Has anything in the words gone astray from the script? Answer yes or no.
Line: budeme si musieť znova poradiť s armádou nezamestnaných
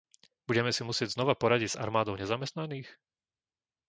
no